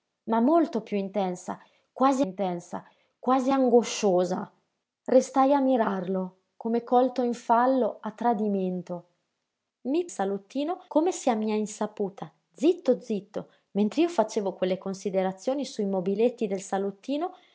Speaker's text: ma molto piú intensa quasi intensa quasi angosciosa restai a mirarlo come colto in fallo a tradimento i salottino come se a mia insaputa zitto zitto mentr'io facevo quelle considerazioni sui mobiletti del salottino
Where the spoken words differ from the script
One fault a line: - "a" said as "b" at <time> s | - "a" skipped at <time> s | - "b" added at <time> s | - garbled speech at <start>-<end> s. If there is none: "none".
none